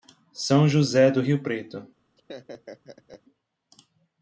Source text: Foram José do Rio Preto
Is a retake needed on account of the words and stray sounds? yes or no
yes